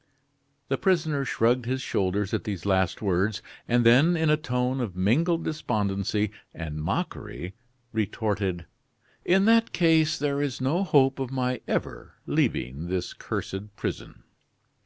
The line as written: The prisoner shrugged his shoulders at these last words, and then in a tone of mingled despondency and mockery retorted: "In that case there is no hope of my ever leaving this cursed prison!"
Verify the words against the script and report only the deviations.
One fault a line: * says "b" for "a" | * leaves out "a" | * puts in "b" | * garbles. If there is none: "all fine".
all fine